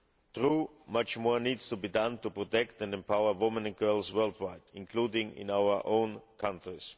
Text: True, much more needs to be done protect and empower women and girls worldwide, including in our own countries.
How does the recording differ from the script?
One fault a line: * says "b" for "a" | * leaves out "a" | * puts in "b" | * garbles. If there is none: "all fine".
* puts in "to"